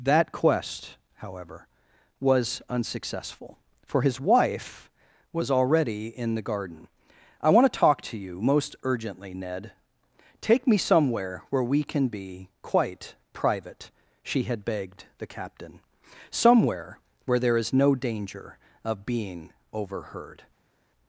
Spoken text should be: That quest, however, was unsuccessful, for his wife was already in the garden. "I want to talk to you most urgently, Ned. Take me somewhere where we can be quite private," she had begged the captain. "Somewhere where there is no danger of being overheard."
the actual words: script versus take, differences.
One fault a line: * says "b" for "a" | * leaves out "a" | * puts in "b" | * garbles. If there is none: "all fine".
all fine